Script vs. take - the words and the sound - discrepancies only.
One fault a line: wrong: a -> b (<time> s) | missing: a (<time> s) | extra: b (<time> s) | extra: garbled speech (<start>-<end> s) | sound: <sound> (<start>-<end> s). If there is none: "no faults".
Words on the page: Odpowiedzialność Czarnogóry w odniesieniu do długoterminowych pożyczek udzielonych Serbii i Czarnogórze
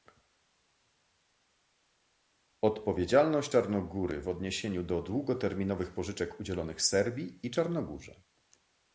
no faults